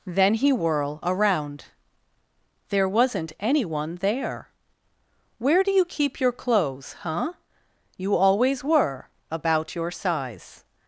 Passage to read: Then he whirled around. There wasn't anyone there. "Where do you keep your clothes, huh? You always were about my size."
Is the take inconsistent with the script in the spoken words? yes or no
yes